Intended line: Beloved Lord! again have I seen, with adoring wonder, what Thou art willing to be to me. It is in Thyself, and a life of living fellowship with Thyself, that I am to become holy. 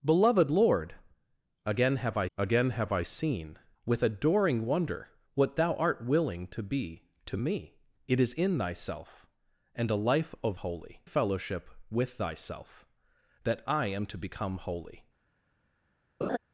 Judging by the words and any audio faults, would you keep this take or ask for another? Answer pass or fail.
fail